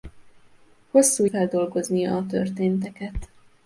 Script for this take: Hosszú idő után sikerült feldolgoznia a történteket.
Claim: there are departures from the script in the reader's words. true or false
true